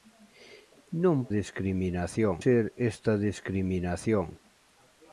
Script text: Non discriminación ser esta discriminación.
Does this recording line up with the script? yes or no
yes